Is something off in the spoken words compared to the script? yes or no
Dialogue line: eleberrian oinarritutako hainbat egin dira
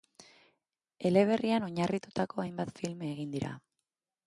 yes